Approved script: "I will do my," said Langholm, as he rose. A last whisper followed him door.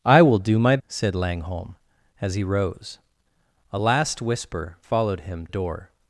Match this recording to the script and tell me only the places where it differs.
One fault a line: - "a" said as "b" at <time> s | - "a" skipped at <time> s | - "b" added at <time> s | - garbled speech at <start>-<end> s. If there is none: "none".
none